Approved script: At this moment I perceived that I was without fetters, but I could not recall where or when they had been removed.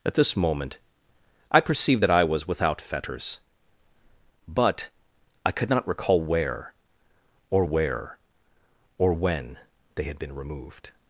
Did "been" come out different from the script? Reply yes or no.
no